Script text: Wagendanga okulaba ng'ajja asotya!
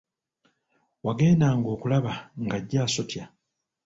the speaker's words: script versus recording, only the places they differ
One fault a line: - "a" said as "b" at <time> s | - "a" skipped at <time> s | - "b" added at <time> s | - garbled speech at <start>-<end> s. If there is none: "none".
none